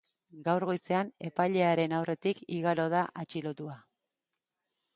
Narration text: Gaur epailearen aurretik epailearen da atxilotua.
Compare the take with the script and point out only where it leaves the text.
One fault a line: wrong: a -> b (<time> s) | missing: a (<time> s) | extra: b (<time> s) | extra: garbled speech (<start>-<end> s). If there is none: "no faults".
extra: goizean (0.7 s)
wrong: epailearen -> igaro (2.6 s)